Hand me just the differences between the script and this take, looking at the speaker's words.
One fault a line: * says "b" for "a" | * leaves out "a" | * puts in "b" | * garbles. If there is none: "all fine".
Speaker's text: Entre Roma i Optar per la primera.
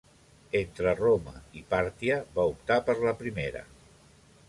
* puts in "Pàrtia va"